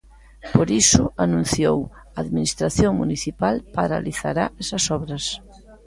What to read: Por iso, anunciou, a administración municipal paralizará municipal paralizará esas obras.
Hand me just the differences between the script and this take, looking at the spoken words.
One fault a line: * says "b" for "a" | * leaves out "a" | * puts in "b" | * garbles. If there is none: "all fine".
* leaves out "municipal paralizará"